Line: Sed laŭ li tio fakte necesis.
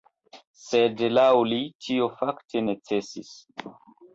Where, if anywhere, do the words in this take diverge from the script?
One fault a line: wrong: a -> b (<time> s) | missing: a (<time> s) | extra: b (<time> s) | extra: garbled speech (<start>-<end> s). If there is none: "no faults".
no faults